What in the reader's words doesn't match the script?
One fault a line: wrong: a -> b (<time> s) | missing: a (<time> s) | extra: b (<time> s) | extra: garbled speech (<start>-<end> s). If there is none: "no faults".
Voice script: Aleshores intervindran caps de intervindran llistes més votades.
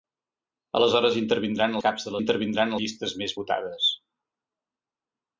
no faults